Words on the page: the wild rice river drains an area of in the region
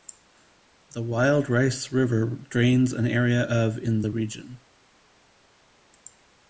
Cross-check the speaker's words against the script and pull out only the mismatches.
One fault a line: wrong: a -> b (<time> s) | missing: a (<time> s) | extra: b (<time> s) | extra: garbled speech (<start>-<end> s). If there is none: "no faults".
no faults